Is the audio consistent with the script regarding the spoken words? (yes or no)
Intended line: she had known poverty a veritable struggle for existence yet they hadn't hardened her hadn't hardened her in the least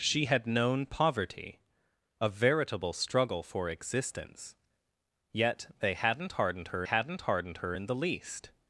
yes